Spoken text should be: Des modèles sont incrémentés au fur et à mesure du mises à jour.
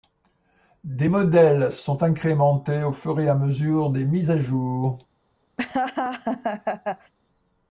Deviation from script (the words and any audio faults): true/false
true